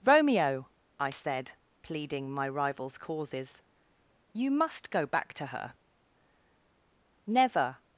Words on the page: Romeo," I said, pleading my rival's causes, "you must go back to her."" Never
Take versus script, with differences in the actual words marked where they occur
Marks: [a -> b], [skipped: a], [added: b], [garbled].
Romeo," I said, pleading my rival's causes, "you must go back to her."" Never